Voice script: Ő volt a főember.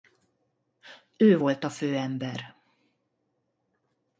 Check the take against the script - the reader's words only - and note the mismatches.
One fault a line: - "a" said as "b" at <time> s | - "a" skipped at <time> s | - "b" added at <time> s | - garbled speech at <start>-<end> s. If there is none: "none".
none